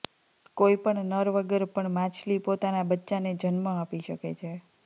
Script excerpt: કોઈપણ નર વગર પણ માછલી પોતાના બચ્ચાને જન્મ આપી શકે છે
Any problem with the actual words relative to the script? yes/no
no